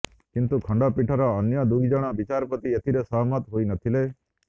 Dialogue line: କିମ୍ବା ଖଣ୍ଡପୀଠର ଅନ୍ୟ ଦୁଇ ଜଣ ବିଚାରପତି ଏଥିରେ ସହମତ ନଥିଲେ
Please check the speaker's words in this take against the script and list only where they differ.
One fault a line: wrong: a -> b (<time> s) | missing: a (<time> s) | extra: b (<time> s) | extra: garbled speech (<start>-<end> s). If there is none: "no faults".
wrong: କିମ୍ବା -> କିନ୍ତୁ (0.3 s)
extra: ହୋଇ (3.6 s)